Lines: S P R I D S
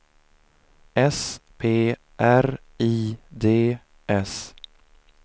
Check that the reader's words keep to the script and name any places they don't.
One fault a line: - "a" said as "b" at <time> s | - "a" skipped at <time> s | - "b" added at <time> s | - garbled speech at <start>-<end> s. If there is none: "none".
none